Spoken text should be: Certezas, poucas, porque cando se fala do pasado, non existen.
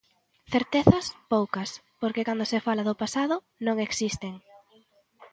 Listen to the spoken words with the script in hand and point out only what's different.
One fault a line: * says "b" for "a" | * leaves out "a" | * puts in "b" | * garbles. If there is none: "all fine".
all fine